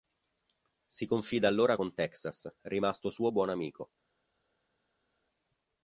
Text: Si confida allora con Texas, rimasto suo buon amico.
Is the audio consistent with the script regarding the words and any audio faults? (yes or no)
yes